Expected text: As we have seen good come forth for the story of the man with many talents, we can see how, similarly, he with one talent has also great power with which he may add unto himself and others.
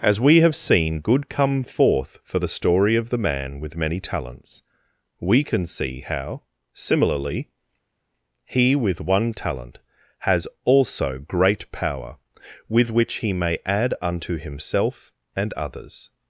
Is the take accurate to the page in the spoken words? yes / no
yes